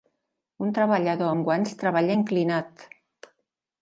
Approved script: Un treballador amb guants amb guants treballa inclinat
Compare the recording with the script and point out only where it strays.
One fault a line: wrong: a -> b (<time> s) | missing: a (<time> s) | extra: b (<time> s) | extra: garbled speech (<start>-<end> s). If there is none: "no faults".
missing: amb guants (1.7 s)